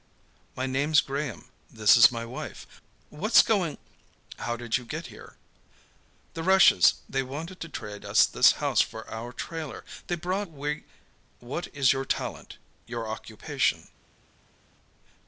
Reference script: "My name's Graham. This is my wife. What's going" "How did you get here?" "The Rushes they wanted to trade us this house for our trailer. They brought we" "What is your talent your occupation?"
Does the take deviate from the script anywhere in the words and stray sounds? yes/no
no